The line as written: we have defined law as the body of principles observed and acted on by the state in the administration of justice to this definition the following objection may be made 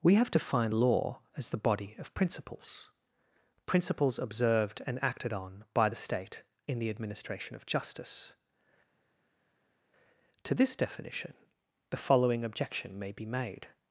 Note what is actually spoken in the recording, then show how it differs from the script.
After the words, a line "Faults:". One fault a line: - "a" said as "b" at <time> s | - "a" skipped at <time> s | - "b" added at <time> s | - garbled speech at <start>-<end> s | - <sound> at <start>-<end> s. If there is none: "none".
we have defined law as the body of principles principles observed and acted on by the state in the administration of justice to this definition the following objection may be made
Faults:
- "principles" added at 3.6 s